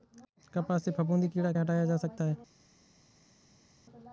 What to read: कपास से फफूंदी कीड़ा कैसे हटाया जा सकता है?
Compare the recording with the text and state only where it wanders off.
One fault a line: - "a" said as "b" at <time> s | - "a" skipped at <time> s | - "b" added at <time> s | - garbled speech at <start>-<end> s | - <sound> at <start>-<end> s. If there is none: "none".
- "कैसे" skipped at 1.5 s